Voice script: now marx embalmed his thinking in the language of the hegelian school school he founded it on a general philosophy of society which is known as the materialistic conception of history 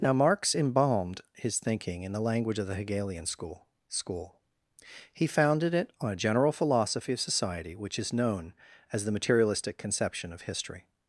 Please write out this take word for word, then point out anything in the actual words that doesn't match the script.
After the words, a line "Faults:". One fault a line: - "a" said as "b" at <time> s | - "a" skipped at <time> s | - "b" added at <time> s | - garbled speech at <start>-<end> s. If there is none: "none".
now marx embalmed his thinking in the language of the hegelian school school he founded it on a general philosophy of society which is known as the materialistic conception of history
Faults:
none